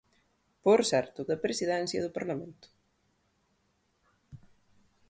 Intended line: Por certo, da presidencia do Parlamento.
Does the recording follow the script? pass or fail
pass